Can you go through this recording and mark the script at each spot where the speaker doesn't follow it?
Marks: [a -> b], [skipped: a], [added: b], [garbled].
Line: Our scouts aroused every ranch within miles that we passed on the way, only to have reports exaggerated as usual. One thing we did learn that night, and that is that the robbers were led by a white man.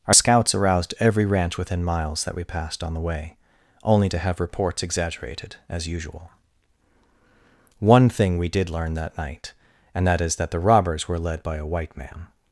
Our scouts aroused every ranch within miles that we passed on the way, only to have reports exaggerated as usual. One thing we did learn that night, and that is that the robbers were led by a white man.